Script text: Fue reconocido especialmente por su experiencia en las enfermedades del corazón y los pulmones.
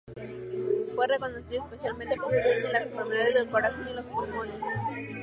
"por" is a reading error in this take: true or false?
true